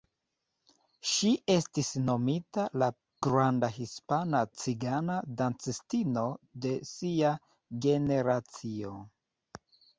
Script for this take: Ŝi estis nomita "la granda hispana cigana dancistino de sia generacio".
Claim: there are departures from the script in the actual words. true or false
false